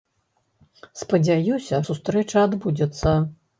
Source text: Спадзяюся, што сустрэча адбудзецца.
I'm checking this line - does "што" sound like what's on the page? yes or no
no